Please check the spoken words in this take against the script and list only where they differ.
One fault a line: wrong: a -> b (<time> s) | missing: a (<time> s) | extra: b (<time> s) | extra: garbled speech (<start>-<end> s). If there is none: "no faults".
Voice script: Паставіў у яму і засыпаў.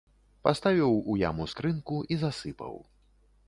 extra: скрынку (1.5 s)